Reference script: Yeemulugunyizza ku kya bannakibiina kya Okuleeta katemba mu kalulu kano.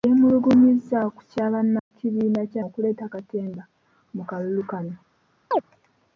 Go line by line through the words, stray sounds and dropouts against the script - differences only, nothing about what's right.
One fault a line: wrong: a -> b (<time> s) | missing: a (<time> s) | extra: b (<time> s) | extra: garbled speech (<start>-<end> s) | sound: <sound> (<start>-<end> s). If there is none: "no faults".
sound: dropout (1.8-1.9 s)
sound: chirp (5.5-5.6 s)